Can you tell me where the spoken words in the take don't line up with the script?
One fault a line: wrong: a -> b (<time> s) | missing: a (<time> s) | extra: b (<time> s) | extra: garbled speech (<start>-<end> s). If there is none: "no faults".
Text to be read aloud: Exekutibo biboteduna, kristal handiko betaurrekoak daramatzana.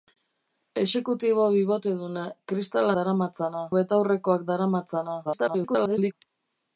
wrong: handiko -> daramatzana (3.0 s)
extra: garbled speech (5.2-6.1 s)